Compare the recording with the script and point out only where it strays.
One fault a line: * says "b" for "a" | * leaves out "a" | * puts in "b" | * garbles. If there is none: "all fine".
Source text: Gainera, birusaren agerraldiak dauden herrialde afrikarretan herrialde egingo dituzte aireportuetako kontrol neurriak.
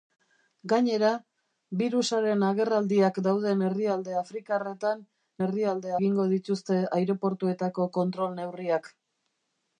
all fine